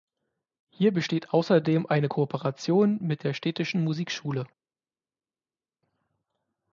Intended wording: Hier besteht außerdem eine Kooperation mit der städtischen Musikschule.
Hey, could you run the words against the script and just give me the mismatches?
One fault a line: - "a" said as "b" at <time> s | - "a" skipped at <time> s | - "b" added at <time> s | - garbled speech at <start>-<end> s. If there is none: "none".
none